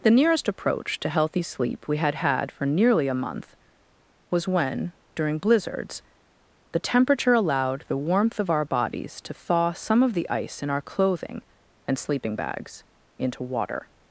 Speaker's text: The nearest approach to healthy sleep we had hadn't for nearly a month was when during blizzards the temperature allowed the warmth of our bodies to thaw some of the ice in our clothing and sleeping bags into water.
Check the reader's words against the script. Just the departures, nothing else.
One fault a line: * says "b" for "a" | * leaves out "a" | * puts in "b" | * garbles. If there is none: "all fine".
* says "had" for "hadn't"